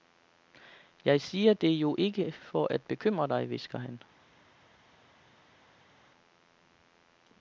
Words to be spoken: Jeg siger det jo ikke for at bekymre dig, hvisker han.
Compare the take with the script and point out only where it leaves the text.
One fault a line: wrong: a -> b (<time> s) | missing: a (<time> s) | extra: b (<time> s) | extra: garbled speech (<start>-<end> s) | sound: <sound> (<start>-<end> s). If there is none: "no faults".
no faults